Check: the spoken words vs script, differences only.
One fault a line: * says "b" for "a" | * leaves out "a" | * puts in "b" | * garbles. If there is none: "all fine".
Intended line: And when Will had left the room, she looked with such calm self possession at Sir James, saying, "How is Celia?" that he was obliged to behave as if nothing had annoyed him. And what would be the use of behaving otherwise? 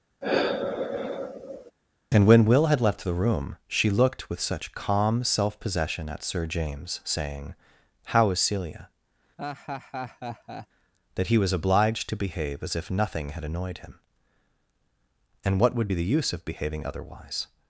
all fine